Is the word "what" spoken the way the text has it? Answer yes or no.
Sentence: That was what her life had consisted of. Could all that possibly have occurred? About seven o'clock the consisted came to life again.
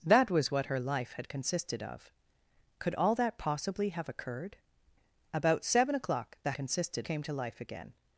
yes